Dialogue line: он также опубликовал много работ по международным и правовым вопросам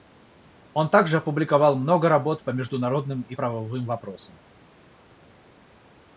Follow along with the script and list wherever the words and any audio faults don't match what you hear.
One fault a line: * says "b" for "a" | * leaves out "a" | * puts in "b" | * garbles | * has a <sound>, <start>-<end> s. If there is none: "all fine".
all fine